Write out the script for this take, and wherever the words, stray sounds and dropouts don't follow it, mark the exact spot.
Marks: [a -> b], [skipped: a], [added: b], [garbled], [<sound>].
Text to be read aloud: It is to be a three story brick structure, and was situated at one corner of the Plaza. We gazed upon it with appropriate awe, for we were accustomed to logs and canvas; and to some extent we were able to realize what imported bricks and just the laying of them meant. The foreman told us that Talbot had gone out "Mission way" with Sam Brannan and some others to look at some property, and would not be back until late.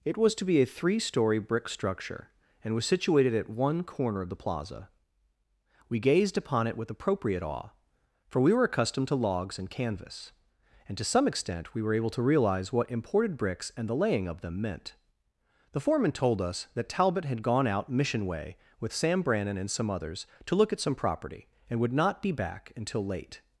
It [is -> was] to be a three story brick structure, and was situated at one corner of the Plaza. We gazed upon it with appropriate awe, for we were accustomed to logs and canvas; and to some extent we were able to realize what imported bricks and [skipped: just] the laying of them meant. The foreman told us that Talbot had gone out "Mission way" with Sam Brannan and some others to look at some property, and would not be back until late.